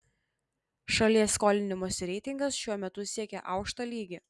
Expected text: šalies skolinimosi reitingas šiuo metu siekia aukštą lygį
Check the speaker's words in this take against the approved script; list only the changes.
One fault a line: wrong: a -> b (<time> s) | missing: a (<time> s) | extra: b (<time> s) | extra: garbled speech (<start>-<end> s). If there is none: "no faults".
no faults